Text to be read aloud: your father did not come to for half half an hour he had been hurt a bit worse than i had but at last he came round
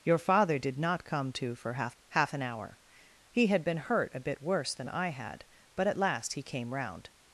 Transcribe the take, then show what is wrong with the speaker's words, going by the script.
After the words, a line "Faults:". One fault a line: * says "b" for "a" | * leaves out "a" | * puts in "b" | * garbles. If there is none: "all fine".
your father did not come to for half half an hour he had been hurt a bit worse than i had but at last he came round
Faults:
all fine